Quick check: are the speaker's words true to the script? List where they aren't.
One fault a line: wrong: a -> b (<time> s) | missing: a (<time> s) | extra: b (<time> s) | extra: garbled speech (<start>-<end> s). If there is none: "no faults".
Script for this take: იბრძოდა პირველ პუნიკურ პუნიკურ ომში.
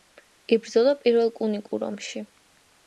missing: პუნიკურ (1.9 s)